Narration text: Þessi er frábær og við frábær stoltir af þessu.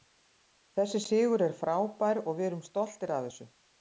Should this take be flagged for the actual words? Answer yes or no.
yes